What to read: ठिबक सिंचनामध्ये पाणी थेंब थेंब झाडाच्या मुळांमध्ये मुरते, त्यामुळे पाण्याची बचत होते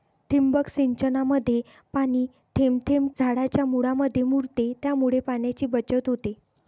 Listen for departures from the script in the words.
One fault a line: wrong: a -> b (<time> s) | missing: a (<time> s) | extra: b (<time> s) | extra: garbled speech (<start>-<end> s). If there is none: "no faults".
no faults